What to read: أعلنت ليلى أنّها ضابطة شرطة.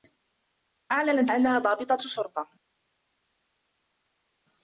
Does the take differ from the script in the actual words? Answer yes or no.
yes